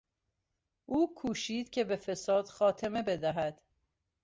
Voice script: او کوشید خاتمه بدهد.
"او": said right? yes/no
yes